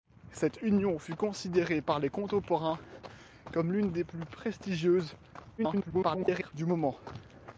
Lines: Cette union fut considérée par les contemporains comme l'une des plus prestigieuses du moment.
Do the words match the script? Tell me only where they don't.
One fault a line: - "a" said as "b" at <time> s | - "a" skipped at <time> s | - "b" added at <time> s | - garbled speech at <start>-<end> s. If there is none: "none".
- garbled speech at 5.6-6.5 s